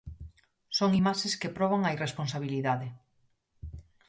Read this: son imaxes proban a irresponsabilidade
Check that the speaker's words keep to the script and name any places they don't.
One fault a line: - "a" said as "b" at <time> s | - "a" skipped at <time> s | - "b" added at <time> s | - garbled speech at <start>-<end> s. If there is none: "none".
- "que" added at 1.4 s